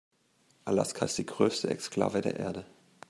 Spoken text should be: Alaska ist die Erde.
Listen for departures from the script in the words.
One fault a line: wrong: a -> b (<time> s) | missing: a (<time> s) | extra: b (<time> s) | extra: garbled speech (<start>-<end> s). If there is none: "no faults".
extra: größte Exklave der (1.3 s)